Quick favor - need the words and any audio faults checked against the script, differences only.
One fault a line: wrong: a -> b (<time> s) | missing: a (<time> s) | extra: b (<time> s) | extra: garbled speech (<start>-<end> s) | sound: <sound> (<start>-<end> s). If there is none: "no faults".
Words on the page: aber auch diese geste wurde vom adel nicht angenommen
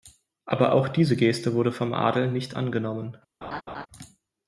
sound: laugh (3.4-3.9 s)